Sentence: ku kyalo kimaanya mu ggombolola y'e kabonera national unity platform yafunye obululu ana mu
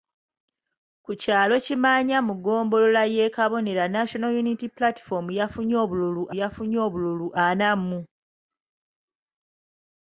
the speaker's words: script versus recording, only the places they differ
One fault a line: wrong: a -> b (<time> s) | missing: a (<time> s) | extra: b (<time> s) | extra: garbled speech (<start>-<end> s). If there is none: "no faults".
extra: yafunye obululu (6.4 s)